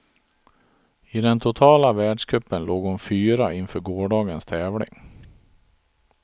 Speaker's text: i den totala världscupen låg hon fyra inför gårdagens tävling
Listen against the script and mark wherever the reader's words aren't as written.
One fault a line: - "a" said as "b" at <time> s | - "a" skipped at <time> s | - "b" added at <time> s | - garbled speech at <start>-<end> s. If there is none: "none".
none